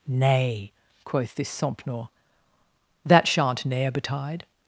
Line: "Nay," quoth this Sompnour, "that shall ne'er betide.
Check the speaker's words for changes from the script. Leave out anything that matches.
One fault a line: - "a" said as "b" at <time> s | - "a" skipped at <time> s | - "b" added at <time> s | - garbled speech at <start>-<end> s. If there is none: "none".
- "shall" said as "shan't" at 3.3 s